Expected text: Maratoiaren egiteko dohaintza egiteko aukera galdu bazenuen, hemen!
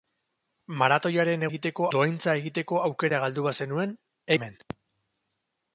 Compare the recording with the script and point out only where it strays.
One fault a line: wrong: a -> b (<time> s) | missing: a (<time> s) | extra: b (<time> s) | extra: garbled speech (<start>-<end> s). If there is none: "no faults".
no faults